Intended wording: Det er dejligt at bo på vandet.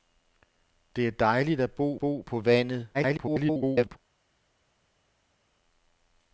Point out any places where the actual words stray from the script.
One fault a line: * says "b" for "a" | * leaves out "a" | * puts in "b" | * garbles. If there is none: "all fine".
* puts in "bo"
* garbles